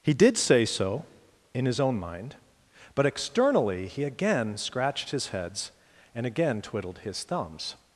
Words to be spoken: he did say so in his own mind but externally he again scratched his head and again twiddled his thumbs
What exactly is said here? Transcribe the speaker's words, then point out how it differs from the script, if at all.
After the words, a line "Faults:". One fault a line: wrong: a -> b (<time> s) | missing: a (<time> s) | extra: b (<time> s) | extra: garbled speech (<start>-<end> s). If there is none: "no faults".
he did say so in his own mind but externally he again scratched his heads and again twiddled his thumbs
Faults:
wrong: head -> heads (5.3 s)